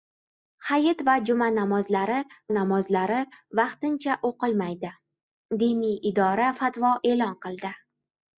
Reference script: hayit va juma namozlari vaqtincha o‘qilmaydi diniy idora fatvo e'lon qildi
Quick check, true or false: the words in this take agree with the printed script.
false